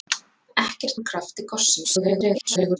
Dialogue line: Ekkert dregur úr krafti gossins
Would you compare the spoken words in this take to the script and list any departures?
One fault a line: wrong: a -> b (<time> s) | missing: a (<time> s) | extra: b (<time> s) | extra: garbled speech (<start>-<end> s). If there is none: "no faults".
missing: dregur (1.0 s)
extra: garbled speech (1.8-2.8 s)